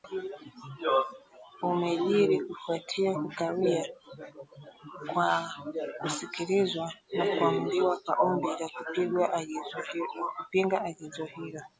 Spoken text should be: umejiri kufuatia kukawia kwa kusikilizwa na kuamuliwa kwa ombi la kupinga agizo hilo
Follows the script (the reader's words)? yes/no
yes